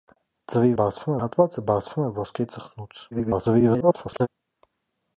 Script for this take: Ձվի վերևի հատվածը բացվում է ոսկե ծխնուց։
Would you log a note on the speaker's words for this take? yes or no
yes